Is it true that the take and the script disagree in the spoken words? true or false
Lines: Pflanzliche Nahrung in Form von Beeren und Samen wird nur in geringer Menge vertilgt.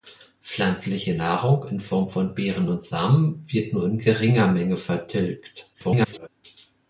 true